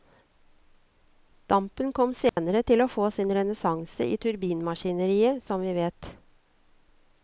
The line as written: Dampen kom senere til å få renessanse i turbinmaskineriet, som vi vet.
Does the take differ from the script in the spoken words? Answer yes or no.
yes